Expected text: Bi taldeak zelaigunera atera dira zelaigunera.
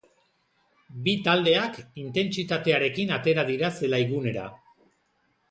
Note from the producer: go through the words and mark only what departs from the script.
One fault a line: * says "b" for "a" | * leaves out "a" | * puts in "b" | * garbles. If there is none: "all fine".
* says "intentsitatearekin" for "zelaigunera"